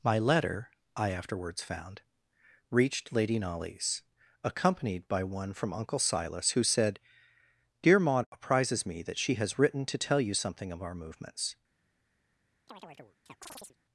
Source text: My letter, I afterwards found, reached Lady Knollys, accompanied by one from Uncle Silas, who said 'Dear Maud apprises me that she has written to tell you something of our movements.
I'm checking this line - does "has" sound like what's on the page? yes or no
yes